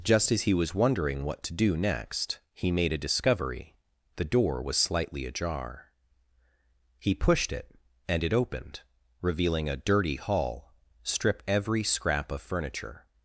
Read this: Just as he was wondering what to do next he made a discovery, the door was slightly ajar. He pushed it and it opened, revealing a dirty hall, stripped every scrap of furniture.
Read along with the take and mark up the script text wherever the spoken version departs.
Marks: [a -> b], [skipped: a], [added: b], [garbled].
Just as he was wondering what to do next he made a discovery, the door was slightly ajar. He pushed it and it opened, revealing a dirty hall, stripped every scrap of furniture.